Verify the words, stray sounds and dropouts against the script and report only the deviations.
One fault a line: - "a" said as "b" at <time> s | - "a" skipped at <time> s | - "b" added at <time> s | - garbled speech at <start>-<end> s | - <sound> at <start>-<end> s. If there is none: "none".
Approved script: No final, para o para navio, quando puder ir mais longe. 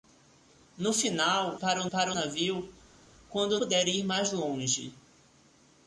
none